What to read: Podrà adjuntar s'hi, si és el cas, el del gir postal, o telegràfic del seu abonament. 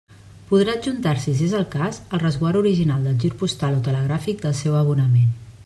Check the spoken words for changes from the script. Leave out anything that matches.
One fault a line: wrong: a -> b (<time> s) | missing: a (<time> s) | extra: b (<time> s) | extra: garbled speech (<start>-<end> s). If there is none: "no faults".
extra: resguard original (2.2 s)